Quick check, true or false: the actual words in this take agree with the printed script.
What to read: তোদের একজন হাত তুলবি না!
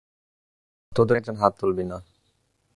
true